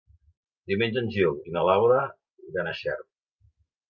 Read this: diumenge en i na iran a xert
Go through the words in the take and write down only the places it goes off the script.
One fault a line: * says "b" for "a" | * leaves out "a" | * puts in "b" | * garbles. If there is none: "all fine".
* puts in "gil"
* puts in "laura"